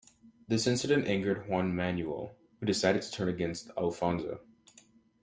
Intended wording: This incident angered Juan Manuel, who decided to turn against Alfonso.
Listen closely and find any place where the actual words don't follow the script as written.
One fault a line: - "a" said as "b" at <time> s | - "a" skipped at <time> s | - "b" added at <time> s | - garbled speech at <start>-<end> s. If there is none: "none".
none